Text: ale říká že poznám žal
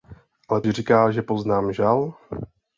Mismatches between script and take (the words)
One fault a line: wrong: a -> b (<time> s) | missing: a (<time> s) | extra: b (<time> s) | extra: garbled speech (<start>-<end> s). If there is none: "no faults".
no faults